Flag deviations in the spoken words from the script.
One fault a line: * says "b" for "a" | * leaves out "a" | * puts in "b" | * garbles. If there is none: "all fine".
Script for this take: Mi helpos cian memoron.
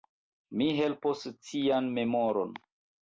all fine